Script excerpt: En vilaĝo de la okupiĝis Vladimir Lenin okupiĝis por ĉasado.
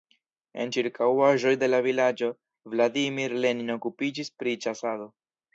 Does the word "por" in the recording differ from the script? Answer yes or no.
yes